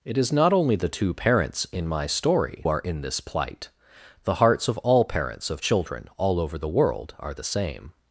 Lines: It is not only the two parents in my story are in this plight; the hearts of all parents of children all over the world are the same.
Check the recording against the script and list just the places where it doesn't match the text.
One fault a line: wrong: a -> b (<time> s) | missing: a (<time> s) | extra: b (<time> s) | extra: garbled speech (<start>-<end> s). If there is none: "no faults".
no faults